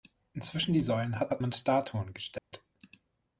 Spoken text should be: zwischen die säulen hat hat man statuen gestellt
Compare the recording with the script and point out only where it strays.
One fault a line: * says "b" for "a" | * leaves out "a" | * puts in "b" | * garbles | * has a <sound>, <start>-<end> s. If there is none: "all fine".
* has a dropout, 2.4-2.5 s